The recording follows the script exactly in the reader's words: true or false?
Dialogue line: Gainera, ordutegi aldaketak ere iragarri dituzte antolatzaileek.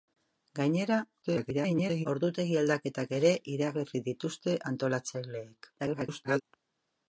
false